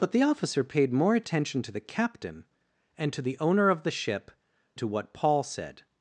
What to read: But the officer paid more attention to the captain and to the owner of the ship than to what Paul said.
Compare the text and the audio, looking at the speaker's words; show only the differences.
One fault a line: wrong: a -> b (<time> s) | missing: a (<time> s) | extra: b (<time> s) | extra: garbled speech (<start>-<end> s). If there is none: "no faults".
missing: than (4.3 s)